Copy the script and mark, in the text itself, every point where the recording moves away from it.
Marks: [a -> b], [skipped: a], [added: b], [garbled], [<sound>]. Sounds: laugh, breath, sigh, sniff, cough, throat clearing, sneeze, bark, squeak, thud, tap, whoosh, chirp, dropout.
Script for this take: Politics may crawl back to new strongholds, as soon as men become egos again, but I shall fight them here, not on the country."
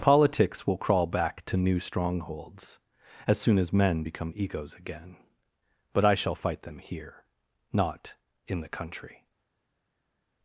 Politics [may -> will] crawl back to new strongholds, as soon as men become egos again, but I shall fight them here, not [on -> in] the country."